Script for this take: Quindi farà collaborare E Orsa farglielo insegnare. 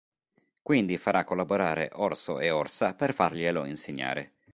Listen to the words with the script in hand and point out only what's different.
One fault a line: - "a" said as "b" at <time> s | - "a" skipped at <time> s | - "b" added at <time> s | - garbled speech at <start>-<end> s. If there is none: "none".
- "Orso" added at 1.9 s
- "per" added at 3.0 s